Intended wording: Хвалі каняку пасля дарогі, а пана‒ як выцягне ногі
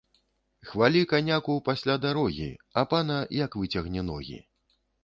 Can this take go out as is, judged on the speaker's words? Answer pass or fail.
pass